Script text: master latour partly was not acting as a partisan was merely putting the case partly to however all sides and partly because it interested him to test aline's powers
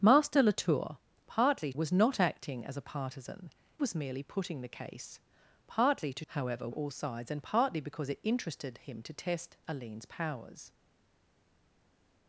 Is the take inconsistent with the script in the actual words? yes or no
no